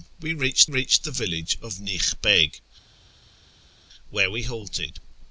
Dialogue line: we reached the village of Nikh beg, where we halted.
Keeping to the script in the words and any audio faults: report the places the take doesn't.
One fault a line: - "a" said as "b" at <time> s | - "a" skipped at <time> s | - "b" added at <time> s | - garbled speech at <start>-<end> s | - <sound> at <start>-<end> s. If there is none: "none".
- "reached" added at 0.7 s